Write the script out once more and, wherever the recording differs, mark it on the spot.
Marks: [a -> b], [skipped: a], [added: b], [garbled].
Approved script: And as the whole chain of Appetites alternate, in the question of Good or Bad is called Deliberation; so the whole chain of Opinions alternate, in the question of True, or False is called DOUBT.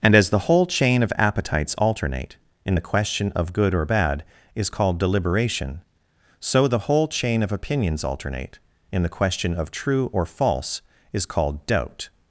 And as the whole chain of Appetites alternate, in the question of Good or Bad is called Deliberation; so the whole chain of Opinions alternate, in the question of True, or False is called DOUBT.